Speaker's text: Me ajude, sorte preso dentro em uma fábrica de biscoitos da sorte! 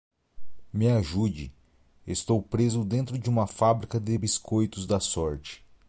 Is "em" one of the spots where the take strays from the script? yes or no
yes